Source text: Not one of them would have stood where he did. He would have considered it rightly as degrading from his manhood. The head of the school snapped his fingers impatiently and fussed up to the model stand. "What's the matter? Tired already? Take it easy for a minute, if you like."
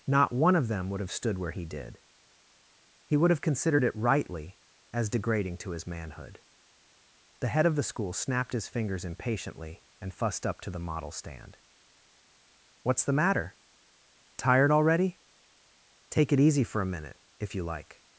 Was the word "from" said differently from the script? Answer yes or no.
yes